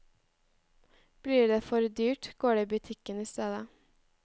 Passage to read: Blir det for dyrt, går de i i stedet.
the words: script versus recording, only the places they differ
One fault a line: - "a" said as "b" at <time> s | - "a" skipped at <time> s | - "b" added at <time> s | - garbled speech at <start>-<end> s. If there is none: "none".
- "butikken" added at 2.6 s